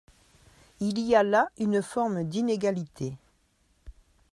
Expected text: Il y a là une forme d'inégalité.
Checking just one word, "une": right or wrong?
right